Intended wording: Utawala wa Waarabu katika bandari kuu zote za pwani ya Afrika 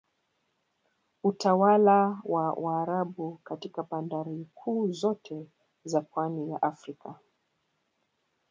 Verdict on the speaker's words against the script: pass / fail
pass